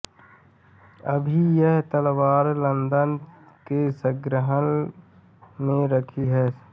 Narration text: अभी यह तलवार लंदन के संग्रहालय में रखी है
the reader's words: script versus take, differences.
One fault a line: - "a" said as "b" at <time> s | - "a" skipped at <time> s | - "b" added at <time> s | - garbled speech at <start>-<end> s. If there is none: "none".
none